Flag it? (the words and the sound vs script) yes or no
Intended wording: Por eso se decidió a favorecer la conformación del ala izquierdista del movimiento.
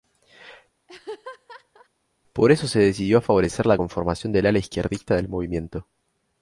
yes